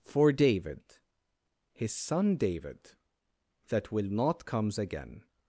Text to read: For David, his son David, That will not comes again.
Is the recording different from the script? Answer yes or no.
no